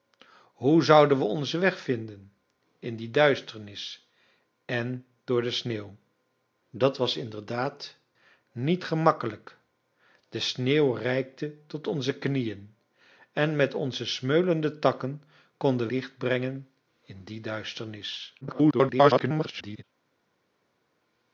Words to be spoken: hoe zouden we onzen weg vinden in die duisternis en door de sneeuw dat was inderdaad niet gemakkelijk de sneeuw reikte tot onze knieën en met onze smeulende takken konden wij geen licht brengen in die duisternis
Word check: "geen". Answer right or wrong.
wrong